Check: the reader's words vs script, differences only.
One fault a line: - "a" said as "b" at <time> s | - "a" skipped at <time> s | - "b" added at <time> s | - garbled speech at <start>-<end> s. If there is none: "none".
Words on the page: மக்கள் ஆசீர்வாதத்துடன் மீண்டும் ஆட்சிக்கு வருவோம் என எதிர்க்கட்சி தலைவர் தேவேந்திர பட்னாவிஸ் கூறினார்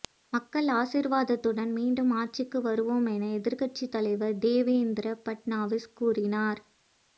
none